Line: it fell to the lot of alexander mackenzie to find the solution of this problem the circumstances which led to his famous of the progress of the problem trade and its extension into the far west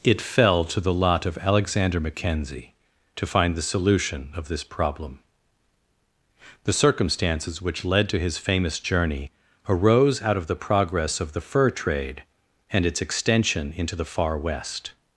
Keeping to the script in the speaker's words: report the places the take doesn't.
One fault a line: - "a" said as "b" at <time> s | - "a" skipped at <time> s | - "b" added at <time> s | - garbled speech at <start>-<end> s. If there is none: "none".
- "journey arose out" added at 8.8 s
- "problem" said as "fur" at 11.4 s